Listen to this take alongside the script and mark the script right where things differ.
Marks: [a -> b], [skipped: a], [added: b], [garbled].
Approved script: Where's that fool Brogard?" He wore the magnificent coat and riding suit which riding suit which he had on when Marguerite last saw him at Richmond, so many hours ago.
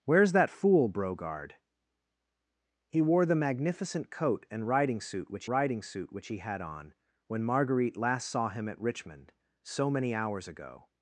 Where's that fool Brogard?" He wore the magnificent coat and riding suit which riding suit which he had on when Marguerite last saw him at Richmond, so many hours ago.